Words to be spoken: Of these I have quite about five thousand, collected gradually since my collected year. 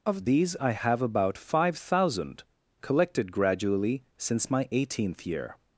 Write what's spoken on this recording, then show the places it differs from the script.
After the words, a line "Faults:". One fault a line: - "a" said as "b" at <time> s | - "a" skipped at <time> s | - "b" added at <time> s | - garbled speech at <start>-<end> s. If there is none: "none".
Of these I have about five thousand, collected gradually since my eighteenth year.
Faults:
- "quite" skipped at 1.0 s
- "collected" said as "eighteenth" at 4.7 s